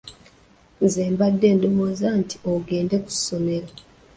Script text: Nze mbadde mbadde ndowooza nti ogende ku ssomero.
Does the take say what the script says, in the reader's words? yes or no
no